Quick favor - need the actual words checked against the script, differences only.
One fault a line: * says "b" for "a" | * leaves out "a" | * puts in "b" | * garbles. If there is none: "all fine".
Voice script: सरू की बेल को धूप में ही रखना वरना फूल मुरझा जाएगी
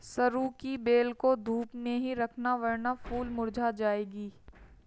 all fine